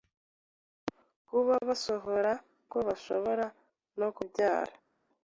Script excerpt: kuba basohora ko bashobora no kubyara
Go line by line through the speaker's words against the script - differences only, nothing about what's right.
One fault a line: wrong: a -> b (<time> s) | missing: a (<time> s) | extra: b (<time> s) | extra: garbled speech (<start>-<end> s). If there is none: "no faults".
no faults